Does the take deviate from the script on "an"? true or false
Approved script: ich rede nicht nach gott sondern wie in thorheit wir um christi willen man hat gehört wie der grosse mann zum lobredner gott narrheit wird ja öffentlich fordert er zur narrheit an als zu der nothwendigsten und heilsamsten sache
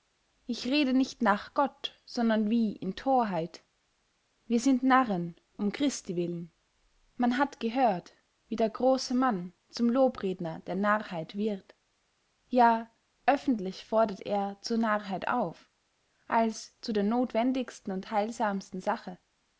true